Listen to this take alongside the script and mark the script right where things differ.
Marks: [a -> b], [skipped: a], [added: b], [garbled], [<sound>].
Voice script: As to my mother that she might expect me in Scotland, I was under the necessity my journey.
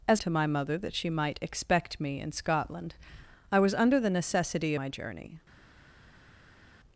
As to my mother that she might expect me in Scotland, I was under the necessity my journey.